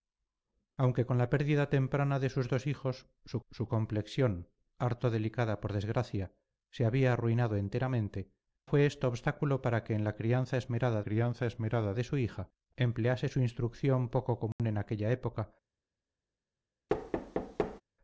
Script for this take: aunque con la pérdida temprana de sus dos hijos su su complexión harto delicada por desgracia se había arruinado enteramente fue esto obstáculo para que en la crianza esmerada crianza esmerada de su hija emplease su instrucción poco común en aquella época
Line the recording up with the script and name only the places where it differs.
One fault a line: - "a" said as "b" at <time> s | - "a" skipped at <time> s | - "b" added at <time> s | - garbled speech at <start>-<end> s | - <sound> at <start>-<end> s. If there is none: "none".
- dropout at 14.5-14.6 s
- thud at 16.9-17.8 s